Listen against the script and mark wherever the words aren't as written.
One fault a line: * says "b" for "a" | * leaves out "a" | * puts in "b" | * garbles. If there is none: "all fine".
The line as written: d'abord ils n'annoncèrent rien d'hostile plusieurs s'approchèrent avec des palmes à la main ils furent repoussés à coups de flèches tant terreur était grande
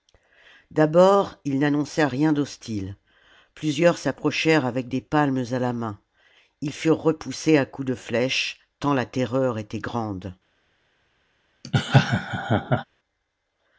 * puts in "la"